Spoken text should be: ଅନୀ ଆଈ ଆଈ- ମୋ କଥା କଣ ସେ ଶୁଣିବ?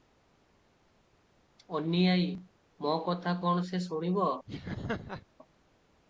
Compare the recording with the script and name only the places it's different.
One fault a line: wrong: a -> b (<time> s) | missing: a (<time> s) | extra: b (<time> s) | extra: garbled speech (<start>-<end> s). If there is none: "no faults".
missing: ଆଈ (2.4 s)